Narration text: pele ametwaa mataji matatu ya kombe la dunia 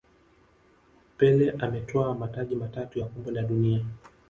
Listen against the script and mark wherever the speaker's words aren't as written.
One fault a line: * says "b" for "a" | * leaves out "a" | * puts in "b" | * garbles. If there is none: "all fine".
all fine